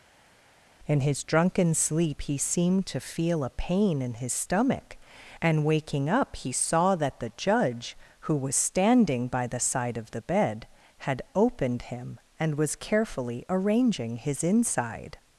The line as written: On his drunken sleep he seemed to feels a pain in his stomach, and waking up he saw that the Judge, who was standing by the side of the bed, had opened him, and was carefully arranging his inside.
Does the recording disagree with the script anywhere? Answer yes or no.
yes